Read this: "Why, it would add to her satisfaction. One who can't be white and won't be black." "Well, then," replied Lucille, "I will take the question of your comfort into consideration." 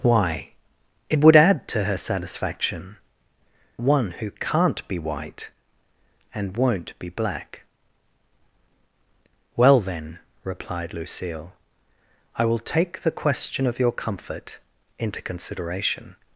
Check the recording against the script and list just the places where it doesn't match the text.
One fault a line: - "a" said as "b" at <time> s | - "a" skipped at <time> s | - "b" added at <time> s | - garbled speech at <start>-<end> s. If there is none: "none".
none